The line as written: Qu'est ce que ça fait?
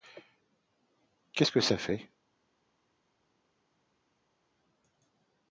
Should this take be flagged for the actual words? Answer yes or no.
no